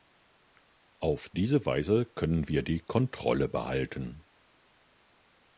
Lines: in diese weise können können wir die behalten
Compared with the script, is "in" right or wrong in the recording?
wrong